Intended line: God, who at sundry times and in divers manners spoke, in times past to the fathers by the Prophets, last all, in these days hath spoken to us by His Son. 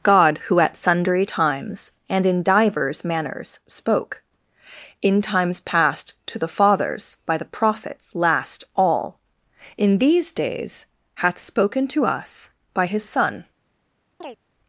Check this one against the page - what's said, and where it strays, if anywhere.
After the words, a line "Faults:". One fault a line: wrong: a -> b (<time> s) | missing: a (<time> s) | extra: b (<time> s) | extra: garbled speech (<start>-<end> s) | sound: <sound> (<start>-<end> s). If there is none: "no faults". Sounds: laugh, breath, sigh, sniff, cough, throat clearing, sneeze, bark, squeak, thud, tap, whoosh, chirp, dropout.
God, who at sundry times and in divers manners spoke, in times past to the fathers by the Prophets, last all, in these days hath spoken to us by His Son.
Faults:
sound: chirp (14.2-14.4 s)